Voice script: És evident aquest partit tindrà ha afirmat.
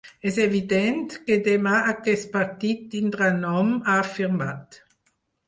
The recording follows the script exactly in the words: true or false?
false